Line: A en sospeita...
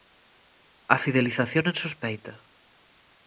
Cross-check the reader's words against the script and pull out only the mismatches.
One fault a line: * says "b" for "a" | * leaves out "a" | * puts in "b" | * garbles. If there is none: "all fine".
* puts in "fidelización"